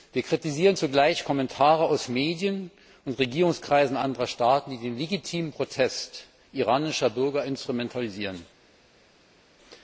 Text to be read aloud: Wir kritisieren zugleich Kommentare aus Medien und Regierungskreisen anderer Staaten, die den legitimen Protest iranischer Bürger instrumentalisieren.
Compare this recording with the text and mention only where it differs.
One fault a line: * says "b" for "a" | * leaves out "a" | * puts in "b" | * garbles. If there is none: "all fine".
all fine